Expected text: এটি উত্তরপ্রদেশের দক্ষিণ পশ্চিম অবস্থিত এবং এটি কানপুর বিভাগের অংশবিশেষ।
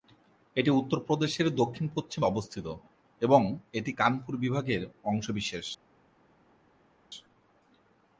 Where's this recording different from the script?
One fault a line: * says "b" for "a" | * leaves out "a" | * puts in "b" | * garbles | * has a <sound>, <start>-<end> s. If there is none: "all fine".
all fine